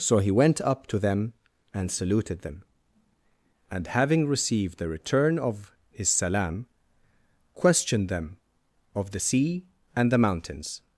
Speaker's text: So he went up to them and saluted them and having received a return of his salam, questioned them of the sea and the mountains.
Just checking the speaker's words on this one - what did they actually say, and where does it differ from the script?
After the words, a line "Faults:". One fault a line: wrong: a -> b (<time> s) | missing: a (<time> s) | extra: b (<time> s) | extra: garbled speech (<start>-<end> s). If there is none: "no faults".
So he went up to them and saluted them and having received the return of his salam, questioned them of the sea and the mountains.
Faults:
wrong: a -> the (4.8 s)